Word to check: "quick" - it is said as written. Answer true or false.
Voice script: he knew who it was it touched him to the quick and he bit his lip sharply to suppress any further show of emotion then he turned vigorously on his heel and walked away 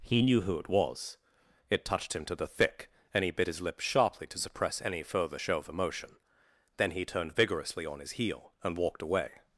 false